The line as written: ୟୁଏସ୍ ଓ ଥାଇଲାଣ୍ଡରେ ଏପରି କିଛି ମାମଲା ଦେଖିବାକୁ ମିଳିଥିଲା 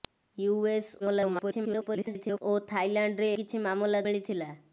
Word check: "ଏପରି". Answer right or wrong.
wrong